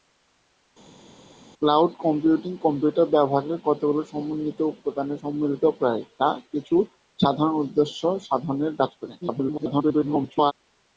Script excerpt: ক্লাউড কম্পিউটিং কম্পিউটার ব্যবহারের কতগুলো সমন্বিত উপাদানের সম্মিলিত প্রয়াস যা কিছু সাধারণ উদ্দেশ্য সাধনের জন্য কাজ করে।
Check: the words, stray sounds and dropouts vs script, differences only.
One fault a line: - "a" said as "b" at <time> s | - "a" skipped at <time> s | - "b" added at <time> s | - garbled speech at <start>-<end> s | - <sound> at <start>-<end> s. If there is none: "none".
- "জন্য" skipped at 8.7 s
- garbled speech at 9.2-10.5 s